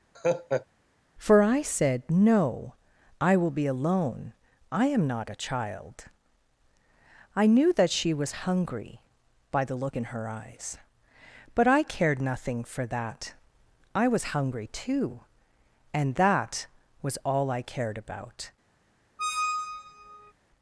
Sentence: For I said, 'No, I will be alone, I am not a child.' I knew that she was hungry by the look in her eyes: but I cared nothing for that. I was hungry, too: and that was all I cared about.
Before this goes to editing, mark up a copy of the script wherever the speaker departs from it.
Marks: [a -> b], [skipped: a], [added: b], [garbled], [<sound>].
[laugh] For I said, 'No, I will be alone, I am not a child.' I knew that she was hungry by the look in her eyes: but I cared nothing for that. I was hungry, too: and that was all I cared about. [squeak]